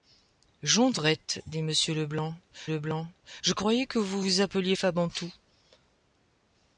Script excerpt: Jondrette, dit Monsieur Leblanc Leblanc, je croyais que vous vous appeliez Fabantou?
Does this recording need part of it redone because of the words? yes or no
no